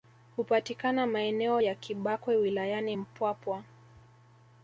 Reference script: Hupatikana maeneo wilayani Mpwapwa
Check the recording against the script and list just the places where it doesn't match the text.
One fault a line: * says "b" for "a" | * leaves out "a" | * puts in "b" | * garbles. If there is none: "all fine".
* puts in "ya Kibakwe"